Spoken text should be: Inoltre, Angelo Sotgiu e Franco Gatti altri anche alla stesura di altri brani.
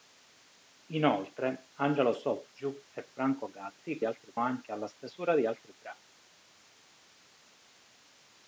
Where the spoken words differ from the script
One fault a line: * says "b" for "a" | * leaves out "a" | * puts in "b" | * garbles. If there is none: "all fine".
all fine